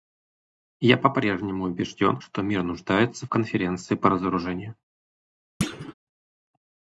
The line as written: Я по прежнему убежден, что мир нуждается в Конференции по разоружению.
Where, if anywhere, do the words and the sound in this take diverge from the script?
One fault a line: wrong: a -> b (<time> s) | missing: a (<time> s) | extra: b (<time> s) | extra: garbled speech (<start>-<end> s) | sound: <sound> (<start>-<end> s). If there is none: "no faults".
sound: thud (5.6-5.9 s)